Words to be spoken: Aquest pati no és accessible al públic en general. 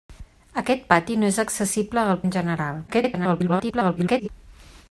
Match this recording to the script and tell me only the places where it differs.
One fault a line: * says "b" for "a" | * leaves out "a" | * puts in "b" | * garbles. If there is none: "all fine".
* leaves out "públic"
* garbles